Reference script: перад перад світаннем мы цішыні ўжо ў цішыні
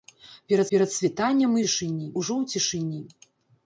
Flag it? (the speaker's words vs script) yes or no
no